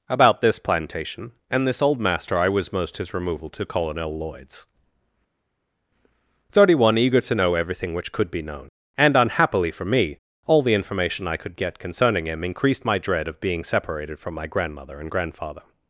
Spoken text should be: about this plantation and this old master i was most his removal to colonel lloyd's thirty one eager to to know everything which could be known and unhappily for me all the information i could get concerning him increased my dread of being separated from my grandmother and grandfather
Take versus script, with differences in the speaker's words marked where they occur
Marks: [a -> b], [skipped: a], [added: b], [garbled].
about this plantation and this old master i was most his removal to colonel lloyd's thirty one eager to [skipped: to] know everything which could be known and unhappily for me all the information i could get concerning him increased my dread of being separated from my grandmother and grandfather